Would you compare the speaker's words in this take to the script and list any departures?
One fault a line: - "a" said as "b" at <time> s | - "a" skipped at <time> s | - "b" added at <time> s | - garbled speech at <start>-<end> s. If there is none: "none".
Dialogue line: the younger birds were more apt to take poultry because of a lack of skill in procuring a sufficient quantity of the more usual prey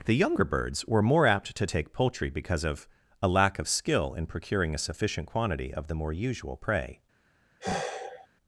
none